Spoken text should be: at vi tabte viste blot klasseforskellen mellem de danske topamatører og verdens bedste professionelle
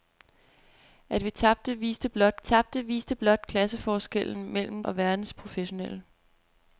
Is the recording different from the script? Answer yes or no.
yes